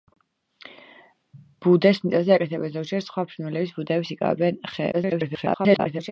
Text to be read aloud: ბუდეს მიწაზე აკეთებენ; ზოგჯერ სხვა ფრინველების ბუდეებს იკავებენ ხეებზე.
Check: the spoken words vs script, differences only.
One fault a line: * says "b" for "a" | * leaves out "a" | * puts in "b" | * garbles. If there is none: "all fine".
* garbles